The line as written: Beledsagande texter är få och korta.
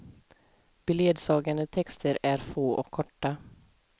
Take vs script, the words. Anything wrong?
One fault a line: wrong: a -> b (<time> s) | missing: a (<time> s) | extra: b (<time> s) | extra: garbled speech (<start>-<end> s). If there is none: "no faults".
no faults